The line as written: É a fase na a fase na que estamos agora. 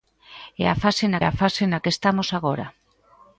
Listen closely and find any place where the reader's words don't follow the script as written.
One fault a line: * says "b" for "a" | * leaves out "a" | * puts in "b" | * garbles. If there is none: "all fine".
all fine